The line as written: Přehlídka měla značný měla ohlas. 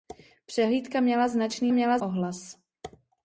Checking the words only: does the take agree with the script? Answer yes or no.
yes